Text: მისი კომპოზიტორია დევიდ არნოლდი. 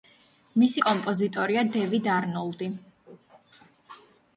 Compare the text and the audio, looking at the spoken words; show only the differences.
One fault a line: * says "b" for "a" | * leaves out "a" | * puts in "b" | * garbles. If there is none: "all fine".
all fine